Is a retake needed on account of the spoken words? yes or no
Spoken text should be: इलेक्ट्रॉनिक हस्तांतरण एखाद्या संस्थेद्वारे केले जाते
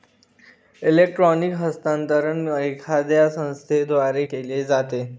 no